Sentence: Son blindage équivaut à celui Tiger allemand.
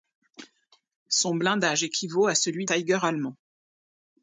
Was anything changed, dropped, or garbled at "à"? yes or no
no